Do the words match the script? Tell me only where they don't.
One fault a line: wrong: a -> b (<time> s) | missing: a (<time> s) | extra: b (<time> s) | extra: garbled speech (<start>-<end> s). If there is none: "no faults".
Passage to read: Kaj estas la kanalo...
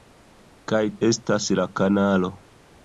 no faults